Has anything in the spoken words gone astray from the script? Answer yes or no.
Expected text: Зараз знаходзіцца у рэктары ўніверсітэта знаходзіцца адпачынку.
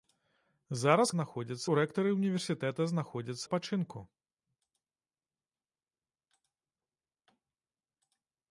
no